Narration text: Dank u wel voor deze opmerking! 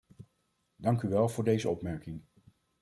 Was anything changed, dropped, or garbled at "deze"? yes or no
no